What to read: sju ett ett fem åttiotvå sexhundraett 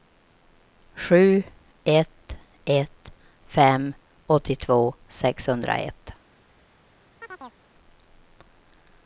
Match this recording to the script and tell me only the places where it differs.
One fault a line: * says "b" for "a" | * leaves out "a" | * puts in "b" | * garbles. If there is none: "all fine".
all fine